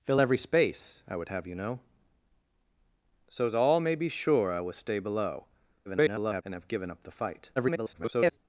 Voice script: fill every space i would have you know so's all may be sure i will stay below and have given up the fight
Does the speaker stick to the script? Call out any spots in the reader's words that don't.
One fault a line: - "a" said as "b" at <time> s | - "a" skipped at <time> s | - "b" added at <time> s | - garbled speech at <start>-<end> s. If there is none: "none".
- garbled speech at 5.9-6.4 s
- garbled speech at 7.6-8.4 s